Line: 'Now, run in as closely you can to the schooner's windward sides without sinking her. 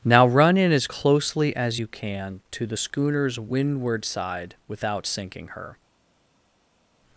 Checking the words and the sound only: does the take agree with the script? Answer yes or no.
no